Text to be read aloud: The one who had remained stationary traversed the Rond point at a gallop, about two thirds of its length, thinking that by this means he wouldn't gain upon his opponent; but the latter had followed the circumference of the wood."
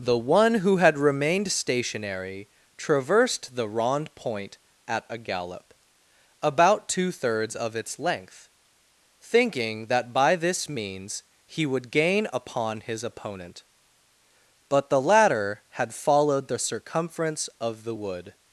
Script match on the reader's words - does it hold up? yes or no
no